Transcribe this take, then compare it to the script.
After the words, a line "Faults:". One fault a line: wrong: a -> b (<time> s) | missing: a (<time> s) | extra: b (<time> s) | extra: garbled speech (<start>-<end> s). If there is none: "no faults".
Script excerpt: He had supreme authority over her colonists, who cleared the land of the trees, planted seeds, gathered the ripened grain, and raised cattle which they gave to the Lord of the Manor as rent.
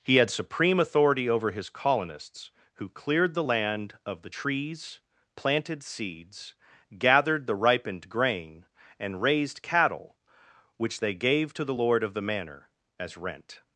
He had supreme authority over his colonists, who cleared the land of the trees, planted seeds, gathered the ripened grain, and raised cattle which they gave to the Lord of the Manor as rent.
Faults:
wrong: her -> his (1.5 s)